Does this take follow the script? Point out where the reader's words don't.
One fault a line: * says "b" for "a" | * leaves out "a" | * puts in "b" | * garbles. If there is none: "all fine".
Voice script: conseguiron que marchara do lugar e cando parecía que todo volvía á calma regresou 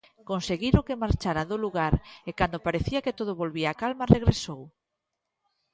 all fine